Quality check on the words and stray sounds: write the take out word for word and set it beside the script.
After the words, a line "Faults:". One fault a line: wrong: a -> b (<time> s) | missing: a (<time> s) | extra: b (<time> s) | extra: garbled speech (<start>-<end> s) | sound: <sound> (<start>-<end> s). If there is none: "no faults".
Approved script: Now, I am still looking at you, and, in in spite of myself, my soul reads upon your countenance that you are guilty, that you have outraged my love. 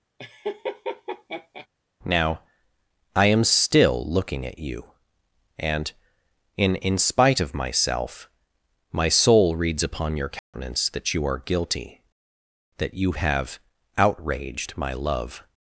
Now, I am still looking at you, and, in in spite of myself, my soul reads upon your countenance that you are guilty, that you have outraged my love.
Faults:
sound: laugh (0.2-1.7 s)
sound: dropout (10.4-10.5 s)